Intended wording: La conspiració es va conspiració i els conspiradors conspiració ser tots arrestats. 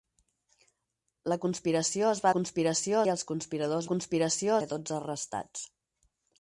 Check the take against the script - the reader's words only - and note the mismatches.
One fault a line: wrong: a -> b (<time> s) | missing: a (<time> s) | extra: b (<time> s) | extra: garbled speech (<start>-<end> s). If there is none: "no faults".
no faults